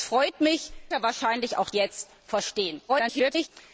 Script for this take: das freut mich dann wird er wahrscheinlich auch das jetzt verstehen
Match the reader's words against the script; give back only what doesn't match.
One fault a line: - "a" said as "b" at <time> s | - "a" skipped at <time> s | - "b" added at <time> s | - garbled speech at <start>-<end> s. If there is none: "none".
- "dann wird" skipped at 0.7 s
- "das" skipped at 1.7 s
- garbled speech at 2.9-3.5 s